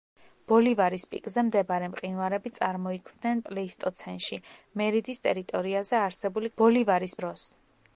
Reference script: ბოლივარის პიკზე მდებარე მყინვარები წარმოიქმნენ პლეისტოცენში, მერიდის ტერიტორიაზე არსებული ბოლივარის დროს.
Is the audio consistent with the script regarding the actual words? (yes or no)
yes